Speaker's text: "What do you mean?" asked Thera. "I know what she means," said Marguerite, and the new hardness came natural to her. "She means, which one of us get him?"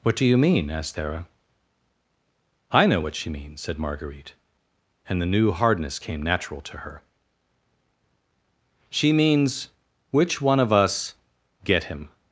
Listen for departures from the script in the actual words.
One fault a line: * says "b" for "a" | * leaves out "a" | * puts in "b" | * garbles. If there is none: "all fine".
all fine